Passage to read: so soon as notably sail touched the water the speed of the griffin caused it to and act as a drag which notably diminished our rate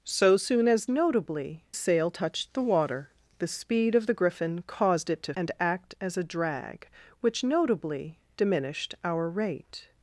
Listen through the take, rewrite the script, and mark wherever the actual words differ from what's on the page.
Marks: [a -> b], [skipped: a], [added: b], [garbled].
so soon as notably sail touched the water the speed of the griffin caused it to and act as a drag which notably diminished our rate